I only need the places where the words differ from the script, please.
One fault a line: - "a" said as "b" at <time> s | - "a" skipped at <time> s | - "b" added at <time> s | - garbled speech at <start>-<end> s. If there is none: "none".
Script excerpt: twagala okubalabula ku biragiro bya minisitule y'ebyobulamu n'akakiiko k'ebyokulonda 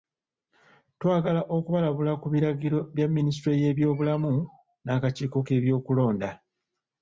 none